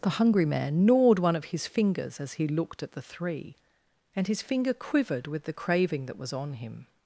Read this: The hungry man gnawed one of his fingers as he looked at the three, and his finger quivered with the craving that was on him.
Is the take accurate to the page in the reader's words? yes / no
yes